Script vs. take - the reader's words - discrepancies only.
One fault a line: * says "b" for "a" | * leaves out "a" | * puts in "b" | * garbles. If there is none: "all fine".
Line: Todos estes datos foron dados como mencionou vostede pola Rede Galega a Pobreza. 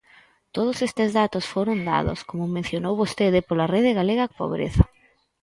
all fine